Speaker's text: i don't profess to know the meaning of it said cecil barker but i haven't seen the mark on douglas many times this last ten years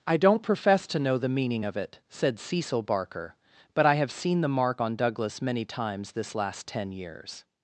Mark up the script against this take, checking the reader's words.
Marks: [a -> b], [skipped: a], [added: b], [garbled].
i don't profess to know the meaning of it said cecil barker but i [haven't -> have] seen the mark on douglas many times this last ten years